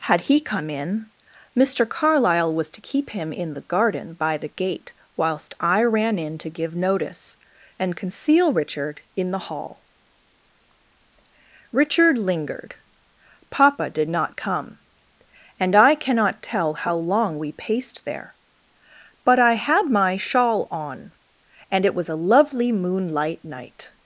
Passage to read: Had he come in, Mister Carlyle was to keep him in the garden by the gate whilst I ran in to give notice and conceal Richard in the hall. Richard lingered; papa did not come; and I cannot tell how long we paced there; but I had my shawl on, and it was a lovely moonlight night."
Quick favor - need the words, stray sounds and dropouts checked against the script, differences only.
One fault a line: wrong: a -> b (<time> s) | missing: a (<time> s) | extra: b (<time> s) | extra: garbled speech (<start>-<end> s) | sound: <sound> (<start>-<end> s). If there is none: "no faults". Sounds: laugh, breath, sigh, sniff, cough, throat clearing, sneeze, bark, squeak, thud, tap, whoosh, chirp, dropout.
no faults